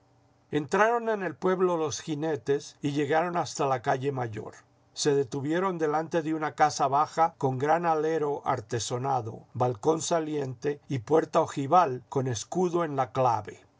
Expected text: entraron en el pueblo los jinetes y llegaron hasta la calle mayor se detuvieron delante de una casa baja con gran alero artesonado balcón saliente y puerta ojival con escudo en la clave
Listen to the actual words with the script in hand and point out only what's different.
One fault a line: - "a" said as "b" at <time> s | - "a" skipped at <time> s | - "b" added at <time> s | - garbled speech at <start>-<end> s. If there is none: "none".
none